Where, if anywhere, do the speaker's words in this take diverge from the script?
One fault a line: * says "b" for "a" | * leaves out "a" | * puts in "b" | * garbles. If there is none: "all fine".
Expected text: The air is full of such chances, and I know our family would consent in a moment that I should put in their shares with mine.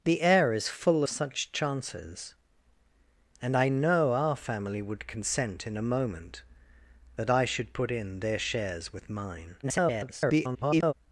* leaves out "of"
* garbles